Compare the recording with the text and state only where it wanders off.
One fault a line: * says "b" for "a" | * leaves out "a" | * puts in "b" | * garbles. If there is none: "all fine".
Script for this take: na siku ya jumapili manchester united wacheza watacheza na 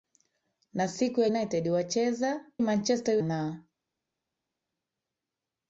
* leaves out "jumapili manchester"
* says "manchester" for "watacheza"